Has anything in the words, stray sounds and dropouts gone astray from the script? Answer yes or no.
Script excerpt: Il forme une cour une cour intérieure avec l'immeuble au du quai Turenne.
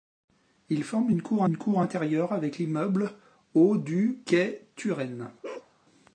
yes